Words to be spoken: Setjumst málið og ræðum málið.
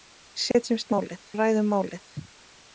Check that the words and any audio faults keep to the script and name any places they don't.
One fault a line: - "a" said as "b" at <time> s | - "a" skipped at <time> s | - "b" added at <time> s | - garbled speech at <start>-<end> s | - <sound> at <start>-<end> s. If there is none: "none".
- dropout at 0.5-0.5 s